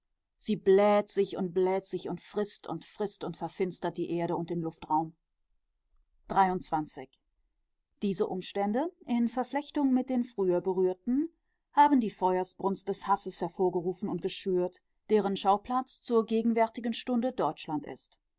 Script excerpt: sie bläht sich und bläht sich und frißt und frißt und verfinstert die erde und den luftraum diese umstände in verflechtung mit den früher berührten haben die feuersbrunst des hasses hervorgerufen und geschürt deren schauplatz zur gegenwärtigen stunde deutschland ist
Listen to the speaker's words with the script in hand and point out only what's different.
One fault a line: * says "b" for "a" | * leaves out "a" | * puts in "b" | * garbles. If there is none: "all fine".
all fine